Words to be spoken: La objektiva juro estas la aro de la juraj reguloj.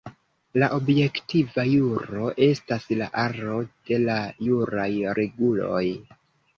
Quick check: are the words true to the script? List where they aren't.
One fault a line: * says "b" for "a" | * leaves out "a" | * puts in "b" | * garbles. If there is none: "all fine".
all fine